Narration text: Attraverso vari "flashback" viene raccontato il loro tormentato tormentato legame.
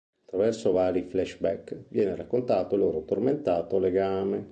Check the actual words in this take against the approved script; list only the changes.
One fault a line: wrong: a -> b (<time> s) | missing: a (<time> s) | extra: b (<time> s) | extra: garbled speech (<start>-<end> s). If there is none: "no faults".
missing: tormentato (3.8 s)